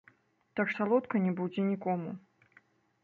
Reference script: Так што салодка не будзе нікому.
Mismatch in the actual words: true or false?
true